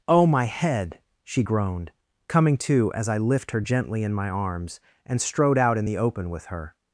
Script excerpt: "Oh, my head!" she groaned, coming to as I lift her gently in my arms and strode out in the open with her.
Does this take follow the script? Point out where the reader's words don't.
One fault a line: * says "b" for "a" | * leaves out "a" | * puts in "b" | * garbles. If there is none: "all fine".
all fine